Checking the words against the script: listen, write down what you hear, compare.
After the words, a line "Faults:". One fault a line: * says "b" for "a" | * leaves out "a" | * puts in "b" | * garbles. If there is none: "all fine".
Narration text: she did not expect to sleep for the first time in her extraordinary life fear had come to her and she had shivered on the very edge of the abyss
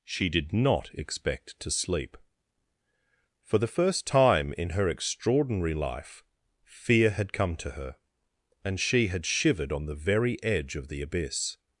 she did not expect to sleep for the first time in her extraordinary life fear had come to her and she had shivered on the very edge of the abyss
Faults:
all fine